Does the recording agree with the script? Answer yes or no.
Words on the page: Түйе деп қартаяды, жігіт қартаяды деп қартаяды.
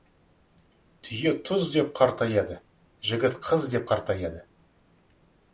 no